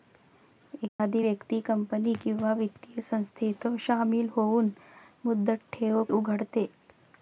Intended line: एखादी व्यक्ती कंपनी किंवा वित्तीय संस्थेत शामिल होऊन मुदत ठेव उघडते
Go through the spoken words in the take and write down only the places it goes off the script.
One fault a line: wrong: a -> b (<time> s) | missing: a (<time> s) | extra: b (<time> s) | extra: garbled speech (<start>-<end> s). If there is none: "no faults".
no faults